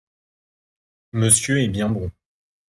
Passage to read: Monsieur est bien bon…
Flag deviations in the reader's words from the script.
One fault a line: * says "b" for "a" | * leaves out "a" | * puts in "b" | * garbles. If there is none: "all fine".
all fine